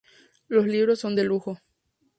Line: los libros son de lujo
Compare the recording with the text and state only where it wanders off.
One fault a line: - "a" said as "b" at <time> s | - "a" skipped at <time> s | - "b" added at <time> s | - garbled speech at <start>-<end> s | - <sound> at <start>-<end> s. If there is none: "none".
none